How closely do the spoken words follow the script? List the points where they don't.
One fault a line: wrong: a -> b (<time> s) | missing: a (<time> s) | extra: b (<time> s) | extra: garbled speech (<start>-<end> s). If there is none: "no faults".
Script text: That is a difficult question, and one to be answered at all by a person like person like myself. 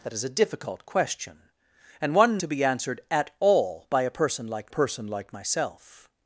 no faults